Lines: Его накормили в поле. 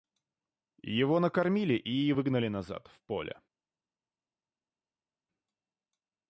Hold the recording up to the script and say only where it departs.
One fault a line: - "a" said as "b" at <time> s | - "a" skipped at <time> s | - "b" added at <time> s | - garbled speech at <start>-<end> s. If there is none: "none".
- "и выгнали назад" added at 1.8 s